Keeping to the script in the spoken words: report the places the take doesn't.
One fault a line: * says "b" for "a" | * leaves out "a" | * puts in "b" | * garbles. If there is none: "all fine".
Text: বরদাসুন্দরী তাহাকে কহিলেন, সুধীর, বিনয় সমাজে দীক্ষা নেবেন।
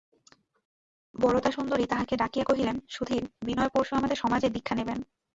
* puts in "ডাকিয়া"
* puts in "পরশু আমাদের"